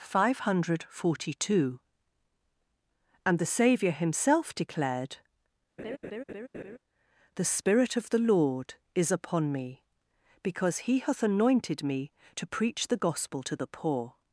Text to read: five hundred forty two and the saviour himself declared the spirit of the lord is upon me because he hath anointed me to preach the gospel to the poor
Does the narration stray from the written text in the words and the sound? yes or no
yes